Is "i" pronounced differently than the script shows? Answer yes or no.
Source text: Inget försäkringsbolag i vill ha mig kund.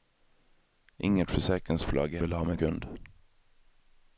no